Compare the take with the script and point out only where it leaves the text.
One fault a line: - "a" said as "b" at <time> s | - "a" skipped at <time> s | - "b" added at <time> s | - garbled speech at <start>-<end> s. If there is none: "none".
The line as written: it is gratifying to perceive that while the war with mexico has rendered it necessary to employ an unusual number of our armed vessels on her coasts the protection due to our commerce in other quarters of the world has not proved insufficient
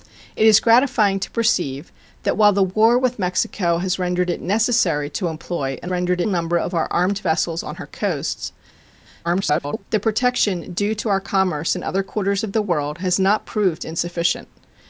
- "unusual" said as "rendered" at 5.9 s
- garbled speech at 9.2-9.8 s